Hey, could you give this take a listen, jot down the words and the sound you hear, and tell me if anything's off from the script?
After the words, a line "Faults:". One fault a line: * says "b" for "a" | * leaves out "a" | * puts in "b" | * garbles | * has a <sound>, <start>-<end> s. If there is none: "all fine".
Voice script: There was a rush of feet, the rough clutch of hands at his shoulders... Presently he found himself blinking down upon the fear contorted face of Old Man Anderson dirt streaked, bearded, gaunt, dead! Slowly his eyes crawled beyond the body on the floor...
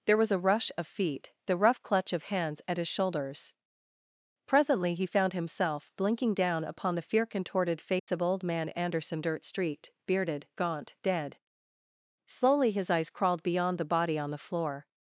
There was a rush of feet, the rough clutch of hands at his shoulders... Presently he found himself blinking down upon the fear contorted face of Old Man Anderson dirt street, bearded, gaunt, dead! Slowly his eyes crawled beyond the body on the floor...
Faults:
* has a dropout, 8.0-8.1 s
* says "street" for "streaked"